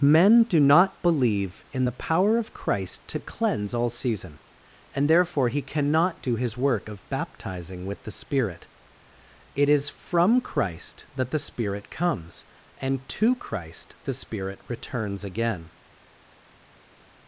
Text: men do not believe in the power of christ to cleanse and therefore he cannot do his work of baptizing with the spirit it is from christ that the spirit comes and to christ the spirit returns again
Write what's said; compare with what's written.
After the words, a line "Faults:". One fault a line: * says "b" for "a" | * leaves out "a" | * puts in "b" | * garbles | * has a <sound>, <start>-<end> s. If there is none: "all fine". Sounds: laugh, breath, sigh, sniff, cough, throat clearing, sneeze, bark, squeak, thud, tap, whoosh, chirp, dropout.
men do not believe in the power of christ to cleanse all season and therefore he cannot do his work of baptizing with the spirit it is from christ that the spirit comes and to christ the spirit returns again
Faults:
* puts in "all season"